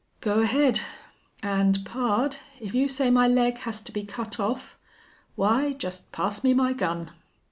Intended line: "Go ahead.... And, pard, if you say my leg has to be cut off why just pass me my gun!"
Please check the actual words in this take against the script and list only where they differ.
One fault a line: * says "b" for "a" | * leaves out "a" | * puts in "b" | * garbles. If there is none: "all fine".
all fine